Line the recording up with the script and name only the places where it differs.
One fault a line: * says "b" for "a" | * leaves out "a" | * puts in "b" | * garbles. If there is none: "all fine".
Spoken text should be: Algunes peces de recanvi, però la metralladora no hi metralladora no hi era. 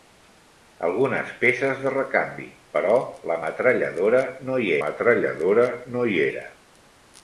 all fine